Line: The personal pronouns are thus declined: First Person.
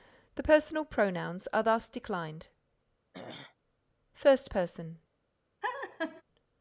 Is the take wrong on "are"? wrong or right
right